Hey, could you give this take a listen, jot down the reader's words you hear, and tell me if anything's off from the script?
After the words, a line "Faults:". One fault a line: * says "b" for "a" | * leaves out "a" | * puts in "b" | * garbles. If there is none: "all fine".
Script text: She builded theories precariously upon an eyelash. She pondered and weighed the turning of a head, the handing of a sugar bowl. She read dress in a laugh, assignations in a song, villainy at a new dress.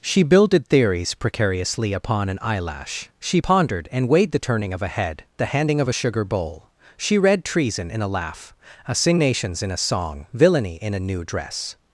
She builded theories precariously upon an eyelash. She pondered and weighed the turning of a head, the handing of a sugar bowl. She read treason in a laugh, assignations in a song, villainy in a new dress.
Faults:
* says "treason" for "dress"
* says "in" for "at"